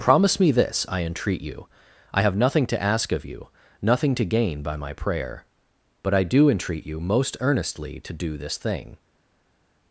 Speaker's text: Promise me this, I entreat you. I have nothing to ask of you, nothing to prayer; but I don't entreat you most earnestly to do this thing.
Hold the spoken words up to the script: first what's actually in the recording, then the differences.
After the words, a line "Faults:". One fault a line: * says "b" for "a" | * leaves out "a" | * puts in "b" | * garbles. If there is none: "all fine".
Promise me this, I entreat you. I have nothing to ask of you, nothing to gain by my prayer; but I do entreat you most earnestly to do this thing.
Faults:
* puts in "gain by my"
* says "do" for "don't"